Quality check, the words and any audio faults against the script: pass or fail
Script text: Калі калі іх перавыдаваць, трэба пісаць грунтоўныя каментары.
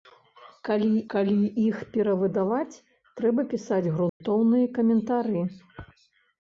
fail